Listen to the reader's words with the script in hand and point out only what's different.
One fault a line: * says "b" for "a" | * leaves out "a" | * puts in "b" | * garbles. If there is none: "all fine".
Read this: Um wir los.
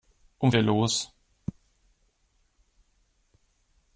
all fine